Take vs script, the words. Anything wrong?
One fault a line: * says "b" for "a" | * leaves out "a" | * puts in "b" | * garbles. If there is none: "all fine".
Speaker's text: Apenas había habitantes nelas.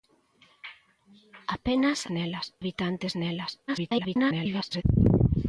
* says "nelas" for "había"
* garbles